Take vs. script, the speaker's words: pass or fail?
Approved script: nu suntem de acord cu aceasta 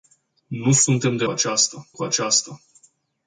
fail